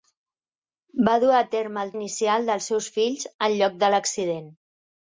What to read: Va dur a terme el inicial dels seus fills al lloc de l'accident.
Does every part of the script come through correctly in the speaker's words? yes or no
yes